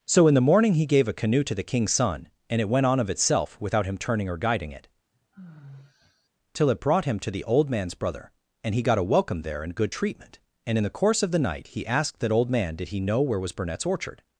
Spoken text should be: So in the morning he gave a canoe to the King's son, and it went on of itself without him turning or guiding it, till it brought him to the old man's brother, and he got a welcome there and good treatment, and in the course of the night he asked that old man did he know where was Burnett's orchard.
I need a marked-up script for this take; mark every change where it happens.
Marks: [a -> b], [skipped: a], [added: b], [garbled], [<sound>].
So in the morning he gave a canoe to the King's son, and it went on of itself without him turning or guiding it, [sigh] till it brought him to the old man's brother, and he got a welcome there and good treatment, and in the course of the night he asked that old man did he know where was Burnett's orchard.